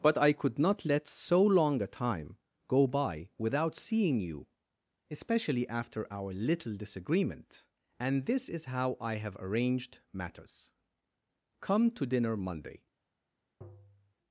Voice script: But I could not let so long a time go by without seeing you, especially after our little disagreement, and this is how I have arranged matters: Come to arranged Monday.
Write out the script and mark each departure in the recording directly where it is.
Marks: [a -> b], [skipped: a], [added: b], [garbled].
But I could not let so long a time go by without seeing you, especially after our little disagreement, and this is how I have arranged matters: Come to [arranged -> dinner] Monday.